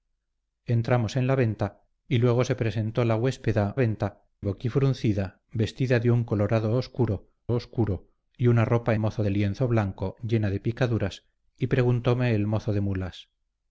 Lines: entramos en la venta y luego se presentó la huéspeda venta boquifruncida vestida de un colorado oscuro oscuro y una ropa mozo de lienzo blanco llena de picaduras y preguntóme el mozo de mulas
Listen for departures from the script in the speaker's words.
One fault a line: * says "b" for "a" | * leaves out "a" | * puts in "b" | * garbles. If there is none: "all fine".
all fine